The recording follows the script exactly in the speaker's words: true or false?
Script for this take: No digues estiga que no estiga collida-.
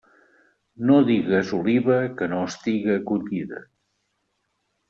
false